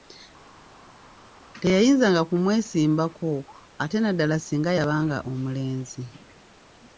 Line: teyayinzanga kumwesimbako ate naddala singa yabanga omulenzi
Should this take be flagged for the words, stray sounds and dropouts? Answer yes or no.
no